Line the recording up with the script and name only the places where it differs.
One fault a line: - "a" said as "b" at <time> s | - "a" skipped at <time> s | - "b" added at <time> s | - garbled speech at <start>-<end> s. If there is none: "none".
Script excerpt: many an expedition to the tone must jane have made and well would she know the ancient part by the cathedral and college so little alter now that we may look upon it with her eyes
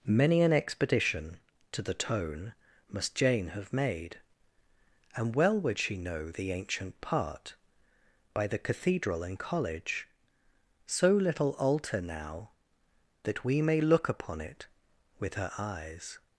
none